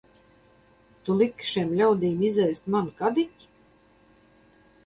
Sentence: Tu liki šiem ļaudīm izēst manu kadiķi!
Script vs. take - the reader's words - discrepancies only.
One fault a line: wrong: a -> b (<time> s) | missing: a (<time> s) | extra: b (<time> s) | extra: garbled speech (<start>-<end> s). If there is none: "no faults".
no faults